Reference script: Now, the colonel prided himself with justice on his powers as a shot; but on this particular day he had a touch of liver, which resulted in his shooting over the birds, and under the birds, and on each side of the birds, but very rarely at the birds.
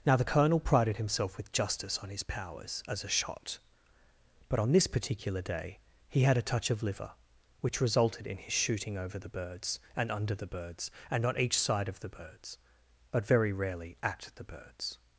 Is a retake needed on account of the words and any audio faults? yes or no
no